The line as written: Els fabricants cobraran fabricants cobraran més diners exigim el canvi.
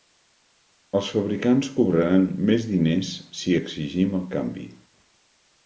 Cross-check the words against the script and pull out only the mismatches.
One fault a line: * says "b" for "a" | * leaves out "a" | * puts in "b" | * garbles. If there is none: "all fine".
* leaves out "fabricants cobraran"
* puts in "si"